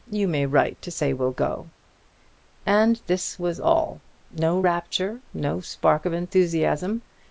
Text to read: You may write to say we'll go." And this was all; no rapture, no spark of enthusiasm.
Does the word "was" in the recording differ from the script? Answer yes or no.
no